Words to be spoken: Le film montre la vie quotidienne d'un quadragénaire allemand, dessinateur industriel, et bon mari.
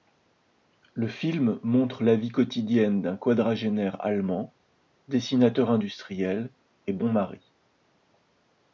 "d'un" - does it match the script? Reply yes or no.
yes